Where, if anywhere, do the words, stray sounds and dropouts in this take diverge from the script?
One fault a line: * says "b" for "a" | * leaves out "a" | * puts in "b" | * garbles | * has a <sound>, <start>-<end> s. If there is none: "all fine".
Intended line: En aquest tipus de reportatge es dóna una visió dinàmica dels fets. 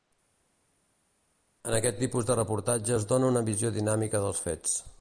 all fine